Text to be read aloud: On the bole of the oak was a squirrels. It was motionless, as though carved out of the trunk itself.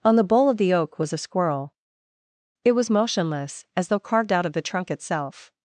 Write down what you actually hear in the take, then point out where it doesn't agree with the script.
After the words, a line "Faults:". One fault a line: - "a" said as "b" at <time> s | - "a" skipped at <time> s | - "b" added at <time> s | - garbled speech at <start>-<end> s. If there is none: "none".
On the bole of the oak was a squirrel. It was motionless, as though carved out of the trunk itself.
Faults:
- "squirrels" said as "squirrel" at 1.2 s